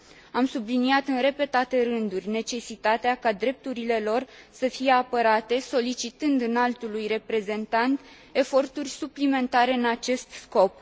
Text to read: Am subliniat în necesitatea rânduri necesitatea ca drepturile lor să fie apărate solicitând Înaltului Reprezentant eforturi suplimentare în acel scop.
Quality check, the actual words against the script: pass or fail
fail